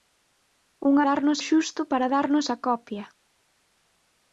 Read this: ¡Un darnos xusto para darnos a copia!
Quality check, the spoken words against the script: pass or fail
pass